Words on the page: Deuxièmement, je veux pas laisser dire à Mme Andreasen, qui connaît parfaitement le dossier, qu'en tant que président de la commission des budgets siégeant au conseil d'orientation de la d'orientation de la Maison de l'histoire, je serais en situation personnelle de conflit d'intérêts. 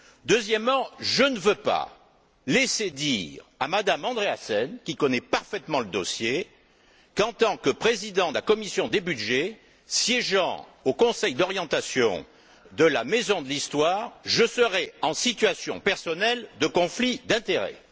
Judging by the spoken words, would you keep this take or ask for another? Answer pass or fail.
fail